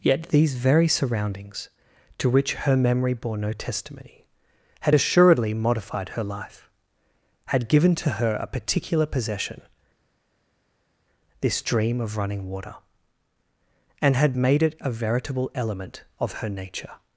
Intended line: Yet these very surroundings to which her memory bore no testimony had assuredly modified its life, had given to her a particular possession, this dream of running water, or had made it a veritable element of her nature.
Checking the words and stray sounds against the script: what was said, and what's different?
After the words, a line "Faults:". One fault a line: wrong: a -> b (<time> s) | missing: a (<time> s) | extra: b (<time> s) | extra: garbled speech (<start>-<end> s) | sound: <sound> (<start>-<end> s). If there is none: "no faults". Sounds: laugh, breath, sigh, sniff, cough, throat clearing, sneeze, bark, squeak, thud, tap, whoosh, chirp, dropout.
Yet these very surroundings to which her memory bore no testimony had assuredly modified her life, had given to her a particular possession, this dream of running water, and had made it a veritable element of her nature.
Faults:
wrong: its -> her (6.1 s)
wrong: or -> and (14.0 s)